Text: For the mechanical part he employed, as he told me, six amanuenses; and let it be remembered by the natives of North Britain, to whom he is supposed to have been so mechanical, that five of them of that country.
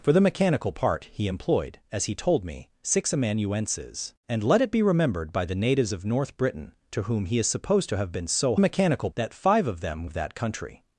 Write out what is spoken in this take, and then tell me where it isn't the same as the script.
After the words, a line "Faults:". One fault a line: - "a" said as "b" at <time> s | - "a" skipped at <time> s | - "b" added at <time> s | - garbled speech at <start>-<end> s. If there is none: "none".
For the mechanical part he employed, as he told me, six amanuenses; and let it be remembered by the natives of North Britain, to whom he is supposed to have been so mechanical, that five of them of that country.
Faults:
none